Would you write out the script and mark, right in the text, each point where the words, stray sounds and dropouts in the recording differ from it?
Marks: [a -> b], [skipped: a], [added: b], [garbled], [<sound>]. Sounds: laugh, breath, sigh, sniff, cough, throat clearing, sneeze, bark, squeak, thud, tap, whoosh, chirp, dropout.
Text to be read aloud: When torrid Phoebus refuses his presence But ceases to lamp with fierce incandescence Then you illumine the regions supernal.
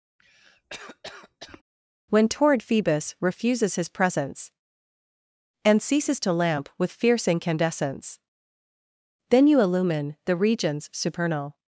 [cough] When torrid Phoebus refuses his presence [But -> And] ceases to lamp with fierce incandescence Then you illumine the regions supernal.